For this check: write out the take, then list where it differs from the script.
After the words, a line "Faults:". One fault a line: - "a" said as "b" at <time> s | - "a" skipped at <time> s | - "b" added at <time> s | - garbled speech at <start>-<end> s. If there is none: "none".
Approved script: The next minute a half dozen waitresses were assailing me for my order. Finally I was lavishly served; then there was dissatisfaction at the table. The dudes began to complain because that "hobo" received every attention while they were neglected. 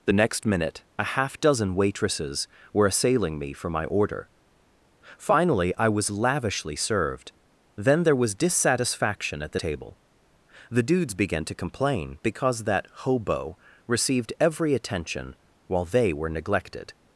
The next minute a half dozen waitresses were assailing me for my order. Finally I was lavishly served; then there was dissatisfaction at the table. The dudes began to complain because that "hobo" received every attention while they were neglected.
Faults:
none